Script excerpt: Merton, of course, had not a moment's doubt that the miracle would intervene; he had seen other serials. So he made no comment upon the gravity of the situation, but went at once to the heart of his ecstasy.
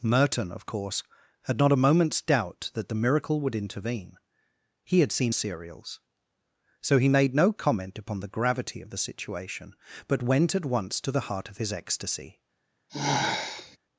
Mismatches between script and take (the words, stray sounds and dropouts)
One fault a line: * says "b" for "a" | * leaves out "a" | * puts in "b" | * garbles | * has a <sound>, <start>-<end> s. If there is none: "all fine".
* leaves out "other"
* has a sigh, 12.9-13.8 s